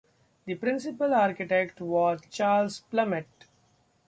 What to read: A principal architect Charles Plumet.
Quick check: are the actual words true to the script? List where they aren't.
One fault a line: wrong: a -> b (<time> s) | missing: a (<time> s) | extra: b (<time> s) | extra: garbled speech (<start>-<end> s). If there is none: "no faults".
wrong: A -> The (0.5 s)
extra: was (1.8 s)